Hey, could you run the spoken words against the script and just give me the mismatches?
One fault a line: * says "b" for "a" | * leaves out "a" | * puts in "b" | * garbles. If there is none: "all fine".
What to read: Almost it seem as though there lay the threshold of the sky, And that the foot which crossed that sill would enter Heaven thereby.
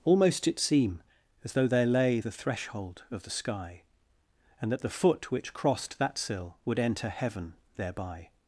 all fine